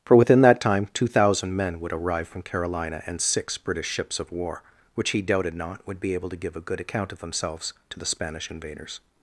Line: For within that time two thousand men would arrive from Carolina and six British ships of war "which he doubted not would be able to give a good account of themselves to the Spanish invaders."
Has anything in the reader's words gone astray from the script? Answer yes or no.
no